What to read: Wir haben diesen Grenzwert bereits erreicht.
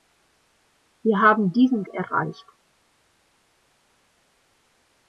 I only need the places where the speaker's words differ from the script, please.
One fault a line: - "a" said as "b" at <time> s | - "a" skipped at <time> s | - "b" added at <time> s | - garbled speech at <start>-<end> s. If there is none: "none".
- "Grenzwert bereits" skipped at 1.8 s